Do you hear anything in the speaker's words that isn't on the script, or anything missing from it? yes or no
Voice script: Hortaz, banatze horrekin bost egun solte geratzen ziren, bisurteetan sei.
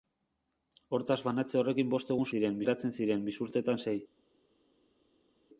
yes